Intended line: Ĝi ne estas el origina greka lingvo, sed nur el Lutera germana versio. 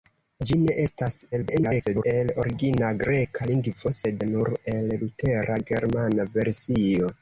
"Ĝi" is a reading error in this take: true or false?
false